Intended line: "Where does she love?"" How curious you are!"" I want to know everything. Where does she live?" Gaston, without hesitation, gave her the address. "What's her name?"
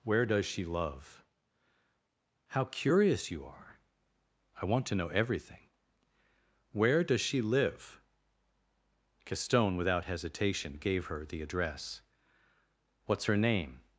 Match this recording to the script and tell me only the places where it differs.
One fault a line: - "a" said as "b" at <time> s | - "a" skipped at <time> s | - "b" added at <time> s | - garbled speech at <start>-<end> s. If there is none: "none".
none